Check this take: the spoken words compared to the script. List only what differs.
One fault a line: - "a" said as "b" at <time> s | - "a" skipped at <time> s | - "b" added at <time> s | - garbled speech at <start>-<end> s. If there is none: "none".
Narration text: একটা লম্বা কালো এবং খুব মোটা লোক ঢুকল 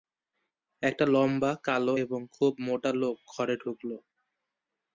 - "ঘরে" added at 3.3 s